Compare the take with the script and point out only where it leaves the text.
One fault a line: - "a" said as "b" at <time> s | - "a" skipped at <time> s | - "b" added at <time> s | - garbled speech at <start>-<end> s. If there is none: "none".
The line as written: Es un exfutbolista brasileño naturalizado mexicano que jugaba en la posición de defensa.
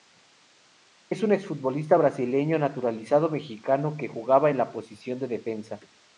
none